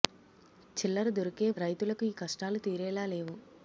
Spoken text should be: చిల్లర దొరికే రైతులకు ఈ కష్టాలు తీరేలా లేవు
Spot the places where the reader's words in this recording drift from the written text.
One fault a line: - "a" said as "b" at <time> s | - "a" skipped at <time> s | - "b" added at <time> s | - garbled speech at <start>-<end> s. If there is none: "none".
none